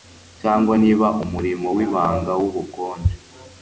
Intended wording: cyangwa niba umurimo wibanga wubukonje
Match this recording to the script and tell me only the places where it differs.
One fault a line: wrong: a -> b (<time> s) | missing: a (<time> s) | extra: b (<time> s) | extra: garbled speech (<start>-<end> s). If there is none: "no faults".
no faults